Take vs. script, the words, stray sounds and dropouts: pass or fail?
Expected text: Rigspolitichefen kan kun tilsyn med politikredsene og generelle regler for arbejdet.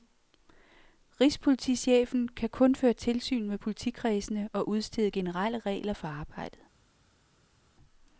fail